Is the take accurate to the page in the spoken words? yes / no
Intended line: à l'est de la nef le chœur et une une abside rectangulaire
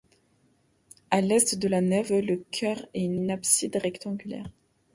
yes